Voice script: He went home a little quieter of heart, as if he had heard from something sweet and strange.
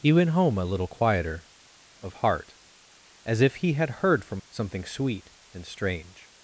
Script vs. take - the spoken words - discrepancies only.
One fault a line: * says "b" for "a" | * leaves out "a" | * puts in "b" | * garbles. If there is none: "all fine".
all fine